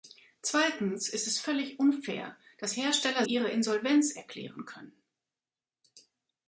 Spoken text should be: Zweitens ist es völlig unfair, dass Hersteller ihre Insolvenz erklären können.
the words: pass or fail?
pass